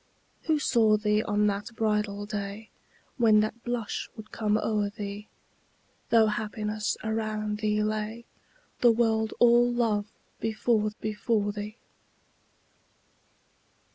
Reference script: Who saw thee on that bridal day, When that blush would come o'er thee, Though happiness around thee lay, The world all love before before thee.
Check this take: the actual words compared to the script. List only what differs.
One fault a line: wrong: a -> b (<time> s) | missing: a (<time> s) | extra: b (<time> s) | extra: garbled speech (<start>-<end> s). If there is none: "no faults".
no faults